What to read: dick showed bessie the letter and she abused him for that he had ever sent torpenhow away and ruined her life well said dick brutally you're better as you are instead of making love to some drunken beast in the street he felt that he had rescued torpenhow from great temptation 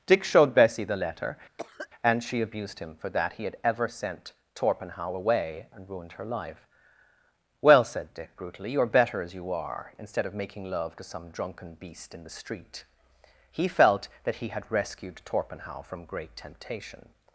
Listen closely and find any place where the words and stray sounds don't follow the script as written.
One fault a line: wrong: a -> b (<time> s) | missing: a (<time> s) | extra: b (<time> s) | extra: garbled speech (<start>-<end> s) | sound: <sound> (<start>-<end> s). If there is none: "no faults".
sound: cough (1.6-1.9 s)